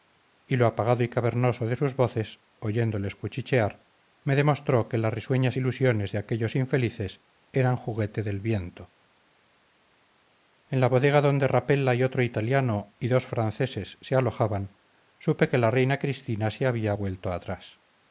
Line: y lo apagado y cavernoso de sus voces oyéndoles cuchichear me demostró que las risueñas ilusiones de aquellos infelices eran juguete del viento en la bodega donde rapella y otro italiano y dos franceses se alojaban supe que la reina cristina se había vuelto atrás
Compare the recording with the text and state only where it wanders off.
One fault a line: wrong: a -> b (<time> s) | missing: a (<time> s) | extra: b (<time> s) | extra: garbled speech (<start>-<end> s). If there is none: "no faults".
no faults